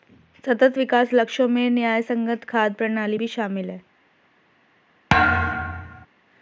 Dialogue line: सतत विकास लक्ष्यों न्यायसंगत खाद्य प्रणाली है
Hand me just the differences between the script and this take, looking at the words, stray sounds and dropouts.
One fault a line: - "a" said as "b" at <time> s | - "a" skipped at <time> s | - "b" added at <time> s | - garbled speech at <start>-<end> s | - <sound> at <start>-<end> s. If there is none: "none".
- "में" added at 1.5 s
- "भी शामिल" added at 3.1 s
- thud at 5.1-6.1 s